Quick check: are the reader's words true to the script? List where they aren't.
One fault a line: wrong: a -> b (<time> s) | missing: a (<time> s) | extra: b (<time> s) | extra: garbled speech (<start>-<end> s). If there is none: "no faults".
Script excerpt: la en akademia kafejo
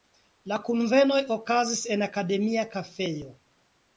extra: kunvenoj okazis (0.7 s)